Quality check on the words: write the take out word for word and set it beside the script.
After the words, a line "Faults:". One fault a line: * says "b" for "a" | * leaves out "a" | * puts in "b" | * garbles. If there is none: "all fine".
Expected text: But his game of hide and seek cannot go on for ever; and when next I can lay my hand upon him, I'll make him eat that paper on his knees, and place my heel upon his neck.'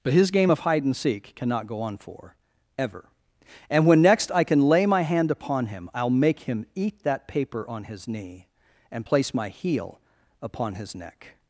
But his game of hide and seek cannot go on for ever; and when next I can lay my hand upon him, I'll make him eat that paper on his knee, and place my heel upon his neck.'
Faults:
* says "knee" for "knees"